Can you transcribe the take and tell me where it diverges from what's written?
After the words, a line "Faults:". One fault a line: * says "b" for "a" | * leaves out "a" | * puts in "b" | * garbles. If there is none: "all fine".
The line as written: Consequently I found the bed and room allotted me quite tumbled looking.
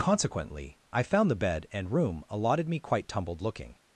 Consequently I found the bed and room allotted me quite tumbled looking.
Faults:
all fine